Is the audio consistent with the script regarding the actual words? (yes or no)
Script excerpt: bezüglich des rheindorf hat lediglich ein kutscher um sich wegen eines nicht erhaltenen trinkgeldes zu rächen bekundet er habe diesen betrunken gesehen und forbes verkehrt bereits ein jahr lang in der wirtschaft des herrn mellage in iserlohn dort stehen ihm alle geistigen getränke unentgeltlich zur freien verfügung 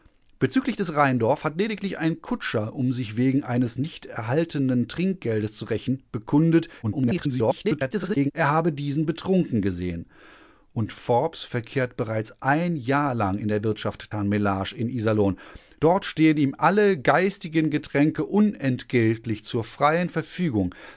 no